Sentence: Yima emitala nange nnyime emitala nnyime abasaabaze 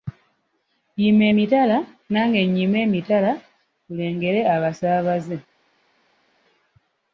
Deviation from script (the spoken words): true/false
true